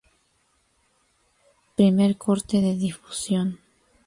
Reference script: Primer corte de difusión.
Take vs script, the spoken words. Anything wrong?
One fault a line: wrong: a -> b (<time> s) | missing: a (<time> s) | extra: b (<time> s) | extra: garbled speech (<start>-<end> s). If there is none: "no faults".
no faults